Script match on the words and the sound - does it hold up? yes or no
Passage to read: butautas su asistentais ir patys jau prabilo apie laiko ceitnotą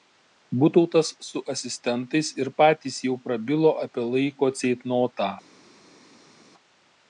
yes